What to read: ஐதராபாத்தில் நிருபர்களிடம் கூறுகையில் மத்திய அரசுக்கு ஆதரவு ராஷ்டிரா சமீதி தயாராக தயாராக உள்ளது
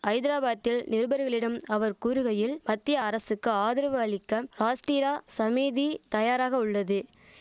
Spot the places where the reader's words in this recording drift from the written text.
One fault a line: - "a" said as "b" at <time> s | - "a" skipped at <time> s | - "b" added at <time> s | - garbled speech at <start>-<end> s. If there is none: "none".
- "அவர்" added at 1.7 s
- "அளிக்க" added at 4.0 s
- "தயாராக" skipped at 6.6 s